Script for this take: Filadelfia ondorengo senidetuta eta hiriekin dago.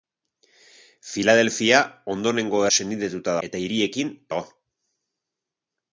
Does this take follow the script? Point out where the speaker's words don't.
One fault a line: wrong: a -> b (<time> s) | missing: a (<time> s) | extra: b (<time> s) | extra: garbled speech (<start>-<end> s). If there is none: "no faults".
no faults